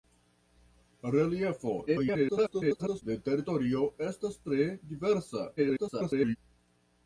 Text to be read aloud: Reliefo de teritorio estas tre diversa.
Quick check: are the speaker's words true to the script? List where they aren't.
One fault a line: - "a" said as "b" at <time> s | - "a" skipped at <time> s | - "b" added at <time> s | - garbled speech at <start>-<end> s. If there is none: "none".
- garbled speech at 1.9-3.0 s
- garbled speech at 5.6-6.4 s